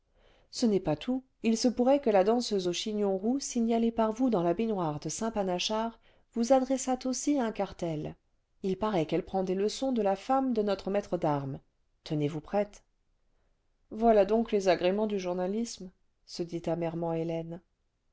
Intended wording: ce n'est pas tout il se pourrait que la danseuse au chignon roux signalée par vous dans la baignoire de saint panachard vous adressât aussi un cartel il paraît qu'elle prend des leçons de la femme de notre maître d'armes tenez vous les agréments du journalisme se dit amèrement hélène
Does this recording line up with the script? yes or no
no